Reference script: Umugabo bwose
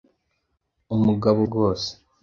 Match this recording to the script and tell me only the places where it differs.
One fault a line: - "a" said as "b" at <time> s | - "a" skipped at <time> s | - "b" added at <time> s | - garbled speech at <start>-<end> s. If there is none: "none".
none